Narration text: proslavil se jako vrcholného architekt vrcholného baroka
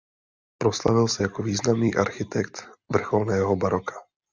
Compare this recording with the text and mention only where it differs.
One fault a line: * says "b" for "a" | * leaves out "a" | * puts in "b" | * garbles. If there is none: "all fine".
* says "významný" for "vrcholného"